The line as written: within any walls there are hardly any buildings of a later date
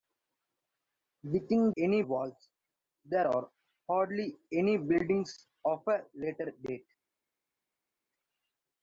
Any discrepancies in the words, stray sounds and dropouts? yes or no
no